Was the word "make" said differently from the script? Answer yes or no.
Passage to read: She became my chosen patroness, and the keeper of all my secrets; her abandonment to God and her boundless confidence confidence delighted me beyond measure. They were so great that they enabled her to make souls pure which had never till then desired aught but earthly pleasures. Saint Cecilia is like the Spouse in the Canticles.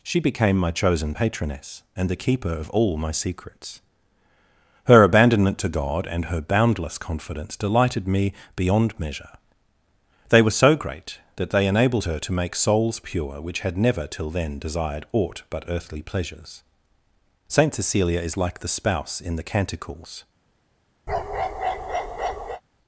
no